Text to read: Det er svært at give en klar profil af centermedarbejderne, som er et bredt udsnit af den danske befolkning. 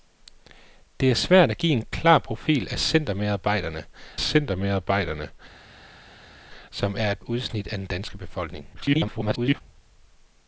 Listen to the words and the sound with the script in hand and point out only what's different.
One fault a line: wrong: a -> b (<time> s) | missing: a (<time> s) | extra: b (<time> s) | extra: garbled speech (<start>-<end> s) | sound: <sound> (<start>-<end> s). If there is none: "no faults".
extra: centermedarbejderne (4.2 s)
missing: bredt (7.2 s)
extra: garbled speech (8.7-9.6 s)